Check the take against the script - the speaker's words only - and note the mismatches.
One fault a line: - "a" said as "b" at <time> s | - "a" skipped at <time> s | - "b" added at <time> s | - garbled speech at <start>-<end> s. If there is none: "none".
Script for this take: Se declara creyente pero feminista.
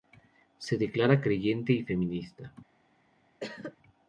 - "pero" said as "y" at 1.7 s